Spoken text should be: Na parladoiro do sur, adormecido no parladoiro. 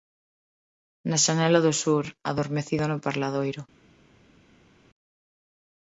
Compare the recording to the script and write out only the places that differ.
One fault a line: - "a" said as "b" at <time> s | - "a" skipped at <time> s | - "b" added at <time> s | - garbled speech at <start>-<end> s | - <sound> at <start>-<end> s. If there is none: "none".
- "parladoiro" said as "xanela" at 1.2 s